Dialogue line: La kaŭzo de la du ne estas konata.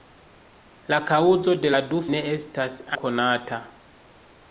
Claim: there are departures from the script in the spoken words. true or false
false